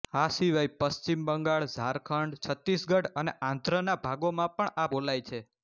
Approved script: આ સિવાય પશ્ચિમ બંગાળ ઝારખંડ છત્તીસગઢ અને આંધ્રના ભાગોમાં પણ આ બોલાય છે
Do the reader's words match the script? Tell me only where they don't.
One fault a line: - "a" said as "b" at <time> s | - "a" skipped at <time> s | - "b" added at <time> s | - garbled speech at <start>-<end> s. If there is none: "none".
none